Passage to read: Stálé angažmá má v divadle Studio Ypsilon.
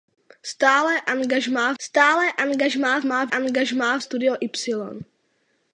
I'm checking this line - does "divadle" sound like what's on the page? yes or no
no